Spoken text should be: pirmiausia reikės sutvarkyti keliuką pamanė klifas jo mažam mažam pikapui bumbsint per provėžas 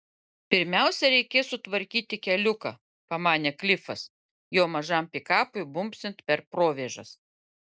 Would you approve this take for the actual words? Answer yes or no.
no